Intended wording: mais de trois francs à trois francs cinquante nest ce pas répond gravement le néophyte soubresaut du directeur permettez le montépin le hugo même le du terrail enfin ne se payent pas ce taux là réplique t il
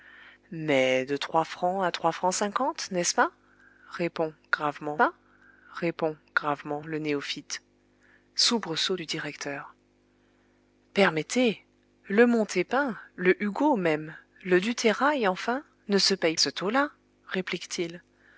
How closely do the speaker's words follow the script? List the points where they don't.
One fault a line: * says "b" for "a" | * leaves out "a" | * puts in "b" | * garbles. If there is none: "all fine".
* puts in "pas répond gravement"
* leaves out "pas"